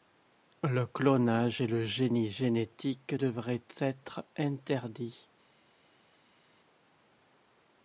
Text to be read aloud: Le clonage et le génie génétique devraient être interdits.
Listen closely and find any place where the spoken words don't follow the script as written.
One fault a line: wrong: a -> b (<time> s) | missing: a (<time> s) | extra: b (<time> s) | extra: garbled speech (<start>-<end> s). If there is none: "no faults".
no faults